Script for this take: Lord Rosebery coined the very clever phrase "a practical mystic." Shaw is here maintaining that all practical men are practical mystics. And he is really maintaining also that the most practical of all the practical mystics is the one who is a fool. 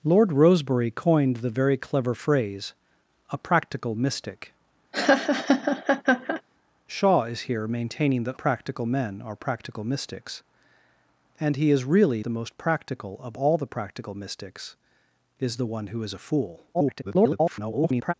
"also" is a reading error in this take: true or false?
true